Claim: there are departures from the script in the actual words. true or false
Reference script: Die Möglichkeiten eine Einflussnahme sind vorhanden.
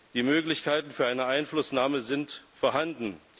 true